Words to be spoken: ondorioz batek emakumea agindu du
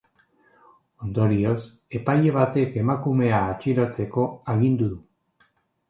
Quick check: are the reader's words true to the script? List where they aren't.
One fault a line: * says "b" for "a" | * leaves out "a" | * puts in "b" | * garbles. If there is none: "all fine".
* puts in "epaile"
* puts in "atxilotzeko"